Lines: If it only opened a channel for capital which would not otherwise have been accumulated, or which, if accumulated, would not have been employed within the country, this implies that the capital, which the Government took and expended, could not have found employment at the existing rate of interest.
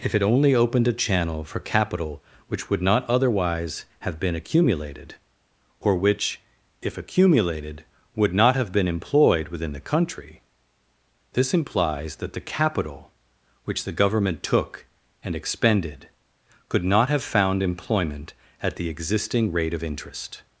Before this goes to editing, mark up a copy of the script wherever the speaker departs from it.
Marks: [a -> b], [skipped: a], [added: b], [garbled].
If it only opened a channel for capital which would not otherwise have been accumulated, or which, if accumulated, would not have been employed within the country, this implies that the capital, which the Government took and expended, could not have found employment at the existing rate of interest.